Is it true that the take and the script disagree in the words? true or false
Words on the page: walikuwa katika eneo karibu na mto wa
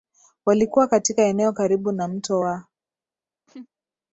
false